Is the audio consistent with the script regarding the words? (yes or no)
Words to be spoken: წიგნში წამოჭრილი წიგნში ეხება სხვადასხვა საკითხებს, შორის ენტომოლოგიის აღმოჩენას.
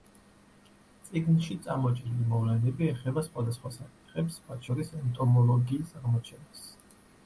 no